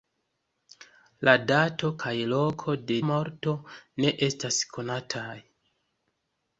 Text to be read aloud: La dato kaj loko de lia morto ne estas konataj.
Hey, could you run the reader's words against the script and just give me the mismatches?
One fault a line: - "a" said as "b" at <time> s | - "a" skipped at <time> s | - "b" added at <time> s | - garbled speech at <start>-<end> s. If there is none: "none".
- "lia" skipped at 3.0 s